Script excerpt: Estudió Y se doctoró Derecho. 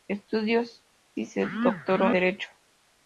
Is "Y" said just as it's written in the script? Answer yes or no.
yes